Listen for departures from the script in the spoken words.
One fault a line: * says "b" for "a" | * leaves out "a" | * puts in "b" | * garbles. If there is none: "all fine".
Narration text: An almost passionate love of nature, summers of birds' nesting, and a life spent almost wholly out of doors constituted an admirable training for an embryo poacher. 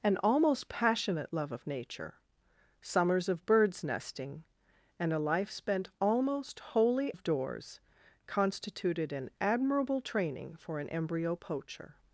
* leaves out "out"